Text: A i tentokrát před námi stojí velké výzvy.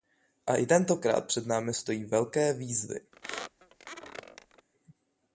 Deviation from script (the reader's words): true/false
false